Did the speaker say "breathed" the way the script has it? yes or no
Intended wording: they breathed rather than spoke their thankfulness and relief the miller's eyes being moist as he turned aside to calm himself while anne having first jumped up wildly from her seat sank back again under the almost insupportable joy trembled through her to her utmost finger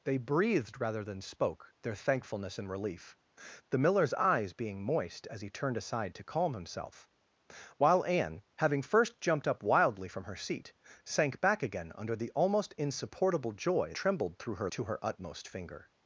yes